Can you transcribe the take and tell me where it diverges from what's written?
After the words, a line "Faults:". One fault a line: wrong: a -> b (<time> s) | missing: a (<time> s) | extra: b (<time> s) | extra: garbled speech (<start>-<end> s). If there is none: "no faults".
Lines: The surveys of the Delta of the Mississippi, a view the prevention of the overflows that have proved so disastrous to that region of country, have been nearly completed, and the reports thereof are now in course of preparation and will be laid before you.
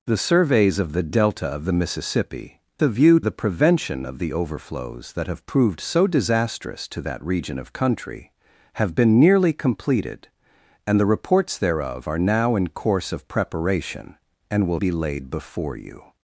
The surveys of the Delta of the Mississippi, a view the prevention of the overflows that have proved so disastrous to that region of country, have been nearly completed, and the reports thereof are now in course of preparation and will be laid before you.
Faults:
no faults